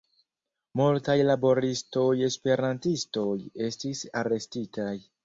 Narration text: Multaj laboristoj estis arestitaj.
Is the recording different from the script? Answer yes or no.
yes